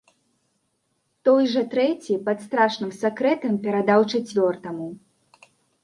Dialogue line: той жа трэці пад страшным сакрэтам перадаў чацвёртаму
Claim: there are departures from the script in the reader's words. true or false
false